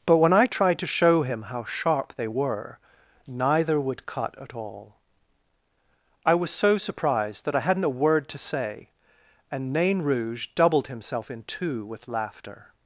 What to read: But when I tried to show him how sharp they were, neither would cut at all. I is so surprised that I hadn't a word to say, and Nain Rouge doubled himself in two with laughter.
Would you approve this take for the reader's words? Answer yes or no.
no